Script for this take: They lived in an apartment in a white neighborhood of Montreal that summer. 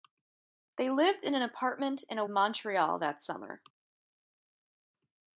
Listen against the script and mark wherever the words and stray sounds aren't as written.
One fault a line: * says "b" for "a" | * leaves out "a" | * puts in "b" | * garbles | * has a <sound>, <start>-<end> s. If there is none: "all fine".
* leaves out "white neighborhood of"